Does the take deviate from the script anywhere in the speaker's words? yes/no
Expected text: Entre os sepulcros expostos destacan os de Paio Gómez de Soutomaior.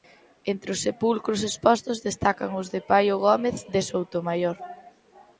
no